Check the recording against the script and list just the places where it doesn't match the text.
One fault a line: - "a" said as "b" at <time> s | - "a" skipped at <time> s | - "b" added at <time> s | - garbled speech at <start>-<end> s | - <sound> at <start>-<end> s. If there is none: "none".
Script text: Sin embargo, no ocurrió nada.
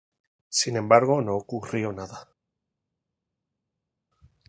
none